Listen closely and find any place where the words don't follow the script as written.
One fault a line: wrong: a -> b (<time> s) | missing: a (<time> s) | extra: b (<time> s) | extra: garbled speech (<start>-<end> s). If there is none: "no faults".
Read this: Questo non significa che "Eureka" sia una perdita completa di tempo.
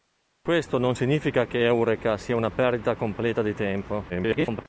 extra: garbled speech (4.1-4.7 s)